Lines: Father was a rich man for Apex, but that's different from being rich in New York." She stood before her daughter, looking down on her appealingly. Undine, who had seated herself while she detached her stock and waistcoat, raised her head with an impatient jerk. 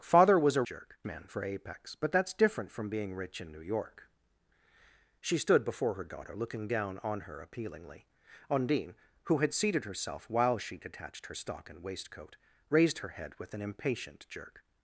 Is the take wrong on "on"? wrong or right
right